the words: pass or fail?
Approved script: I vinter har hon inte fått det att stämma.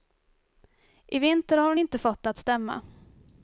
pass